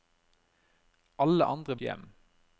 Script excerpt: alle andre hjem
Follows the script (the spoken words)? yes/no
yes